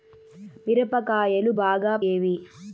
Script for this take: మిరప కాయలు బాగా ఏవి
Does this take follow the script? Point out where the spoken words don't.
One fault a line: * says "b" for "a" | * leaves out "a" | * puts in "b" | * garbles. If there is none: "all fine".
all fine